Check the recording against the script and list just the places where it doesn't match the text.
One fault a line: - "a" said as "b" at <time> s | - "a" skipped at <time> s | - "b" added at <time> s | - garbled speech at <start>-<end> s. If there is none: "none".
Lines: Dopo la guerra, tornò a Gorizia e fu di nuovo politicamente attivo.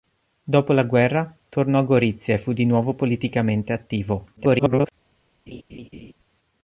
- garbled speech at 4.4-4.9 s